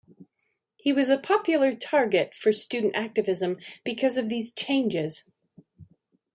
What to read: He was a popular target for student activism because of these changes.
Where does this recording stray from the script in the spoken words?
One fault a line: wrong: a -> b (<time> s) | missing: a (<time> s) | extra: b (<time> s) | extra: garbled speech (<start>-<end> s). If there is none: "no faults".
no faults